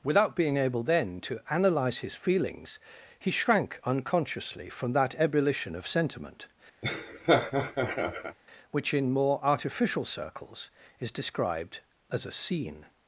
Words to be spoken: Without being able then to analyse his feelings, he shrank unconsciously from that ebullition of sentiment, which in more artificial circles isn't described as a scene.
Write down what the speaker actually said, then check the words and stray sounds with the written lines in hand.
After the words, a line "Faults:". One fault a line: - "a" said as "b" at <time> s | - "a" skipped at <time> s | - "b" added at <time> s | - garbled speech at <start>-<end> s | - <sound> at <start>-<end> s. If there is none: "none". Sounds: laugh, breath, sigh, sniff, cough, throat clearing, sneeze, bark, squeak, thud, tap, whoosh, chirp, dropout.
Without being able then to analyse his feelings, he shrank unconsciously from that ebullition of sentiment, which in more artificial circles is described as a scene.
Faults:
- laugh at 6.8-8.4 s
- "isn't" said as "is" at 11.0 s